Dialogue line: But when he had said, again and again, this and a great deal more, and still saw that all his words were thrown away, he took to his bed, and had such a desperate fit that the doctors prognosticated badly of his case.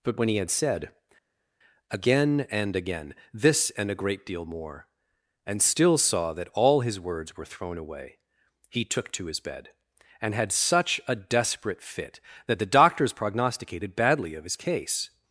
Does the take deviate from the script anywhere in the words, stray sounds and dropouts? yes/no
no